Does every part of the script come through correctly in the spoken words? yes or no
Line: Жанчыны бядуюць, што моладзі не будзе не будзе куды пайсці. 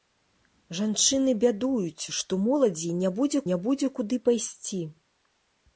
yes